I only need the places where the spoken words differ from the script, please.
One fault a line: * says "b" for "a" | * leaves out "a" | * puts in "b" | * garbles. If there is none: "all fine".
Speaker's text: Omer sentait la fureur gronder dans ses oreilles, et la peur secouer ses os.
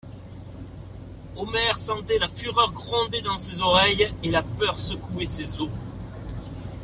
all fine